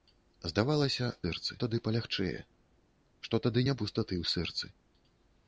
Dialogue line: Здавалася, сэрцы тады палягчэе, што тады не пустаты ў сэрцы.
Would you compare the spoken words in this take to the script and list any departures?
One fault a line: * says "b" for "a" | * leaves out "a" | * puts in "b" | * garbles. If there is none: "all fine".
all fine